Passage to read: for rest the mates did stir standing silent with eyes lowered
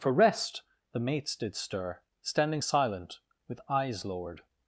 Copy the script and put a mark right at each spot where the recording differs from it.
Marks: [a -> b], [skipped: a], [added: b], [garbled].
for rest the mates did stir standing silent with eyes lowered